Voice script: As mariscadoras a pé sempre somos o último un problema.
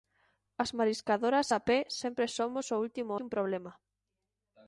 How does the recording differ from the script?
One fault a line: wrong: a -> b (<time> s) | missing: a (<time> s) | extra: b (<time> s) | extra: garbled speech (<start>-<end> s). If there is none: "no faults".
no faults